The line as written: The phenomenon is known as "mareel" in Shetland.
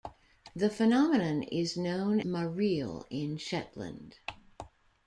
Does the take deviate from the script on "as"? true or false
true